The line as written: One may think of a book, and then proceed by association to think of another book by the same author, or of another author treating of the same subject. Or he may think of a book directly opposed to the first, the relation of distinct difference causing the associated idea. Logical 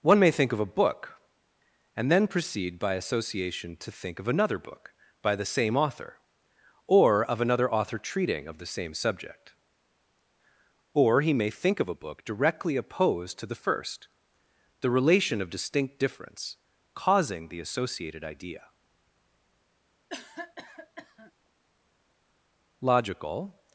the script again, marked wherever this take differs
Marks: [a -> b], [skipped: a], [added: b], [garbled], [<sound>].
One may think of a book, and then proceed by association to think of another book by the same author, or of another author treating of the same subject. Or he may think of a book directly opposed to the first, the relation of distinct difference causing the associated idea. [cough] Logical